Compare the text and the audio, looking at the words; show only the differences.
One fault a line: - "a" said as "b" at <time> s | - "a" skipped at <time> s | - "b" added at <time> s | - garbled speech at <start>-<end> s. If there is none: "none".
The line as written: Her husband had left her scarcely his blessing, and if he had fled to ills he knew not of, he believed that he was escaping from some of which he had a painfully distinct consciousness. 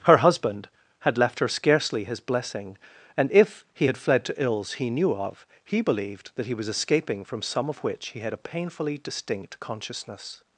- "not" skipped at 5.1 s